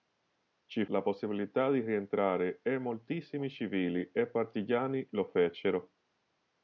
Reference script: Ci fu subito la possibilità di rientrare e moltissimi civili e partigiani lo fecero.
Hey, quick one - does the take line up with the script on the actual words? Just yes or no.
no